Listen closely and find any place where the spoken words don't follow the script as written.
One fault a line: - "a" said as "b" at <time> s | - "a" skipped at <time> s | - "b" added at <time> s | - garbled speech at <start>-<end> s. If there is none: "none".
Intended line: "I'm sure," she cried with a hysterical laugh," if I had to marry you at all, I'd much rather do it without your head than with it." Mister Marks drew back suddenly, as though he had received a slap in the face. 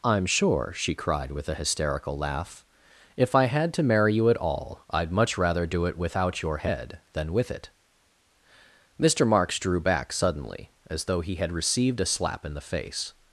none